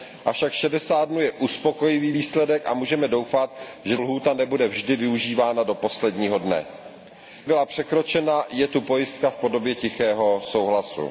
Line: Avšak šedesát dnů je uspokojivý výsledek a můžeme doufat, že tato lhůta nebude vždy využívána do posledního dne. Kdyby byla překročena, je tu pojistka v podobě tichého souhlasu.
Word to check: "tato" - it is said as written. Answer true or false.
false